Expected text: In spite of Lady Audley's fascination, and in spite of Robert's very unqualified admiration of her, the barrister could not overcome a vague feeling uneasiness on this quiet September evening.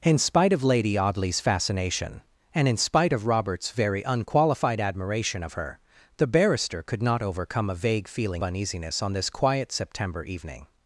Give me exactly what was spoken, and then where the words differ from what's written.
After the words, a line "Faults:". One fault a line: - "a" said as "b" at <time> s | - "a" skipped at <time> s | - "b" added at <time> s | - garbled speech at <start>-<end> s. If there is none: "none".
In spite of Lady Audley's fascination, and in spite of Robert's very unqualified admiration of her, the barrister could not overcome a vague feeling uneasiness on this quiet September evening.
Faults:
none